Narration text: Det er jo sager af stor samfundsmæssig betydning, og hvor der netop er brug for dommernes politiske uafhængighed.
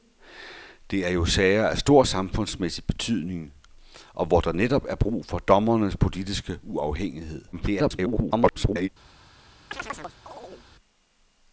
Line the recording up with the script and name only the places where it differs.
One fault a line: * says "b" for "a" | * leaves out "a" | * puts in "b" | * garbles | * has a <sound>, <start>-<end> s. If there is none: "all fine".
* garbles
* has a chirp, 9.7-10.7 s